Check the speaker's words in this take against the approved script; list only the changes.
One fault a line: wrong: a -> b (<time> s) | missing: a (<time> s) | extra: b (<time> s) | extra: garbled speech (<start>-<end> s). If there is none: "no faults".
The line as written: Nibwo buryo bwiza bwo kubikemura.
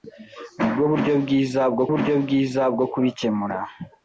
extra: buryo bwiza bwo (1.9 s)